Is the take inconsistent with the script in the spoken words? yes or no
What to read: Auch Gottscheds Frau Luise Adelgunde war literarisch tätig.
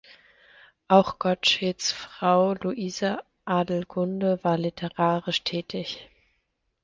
no